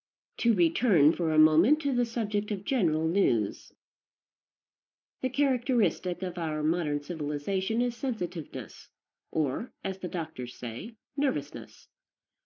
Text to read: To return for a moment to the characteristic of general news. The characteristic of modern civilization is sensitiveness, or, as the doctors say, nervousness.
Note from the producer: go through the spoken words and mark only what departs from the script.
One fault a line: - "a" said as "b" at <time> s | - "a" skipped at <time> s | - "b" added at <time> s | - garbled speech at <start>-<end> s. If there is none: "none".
- "characteristic" said as "subject" at 2.0 s
- "our" added at 6.4 s